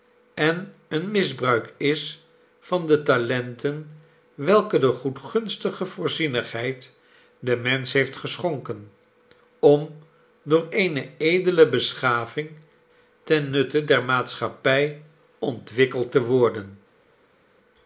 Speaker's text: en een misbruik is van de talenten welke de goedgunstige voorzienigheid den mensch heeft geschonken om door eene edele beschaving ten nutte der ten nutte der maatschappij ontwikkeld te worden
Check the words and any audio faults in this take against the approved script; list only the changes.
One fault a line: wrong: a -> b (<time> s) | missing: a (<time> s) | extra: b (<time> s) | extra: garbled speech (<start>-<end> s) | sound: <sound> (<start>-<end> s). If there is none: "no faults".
missing: ten nutte der (14.0 s)